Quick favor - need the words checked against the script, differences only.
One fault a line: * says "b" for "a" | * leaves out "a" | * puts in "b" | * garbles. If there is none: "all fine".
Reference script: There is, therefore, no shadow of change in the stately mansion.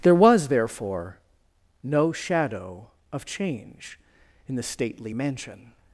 * says "was" for "is"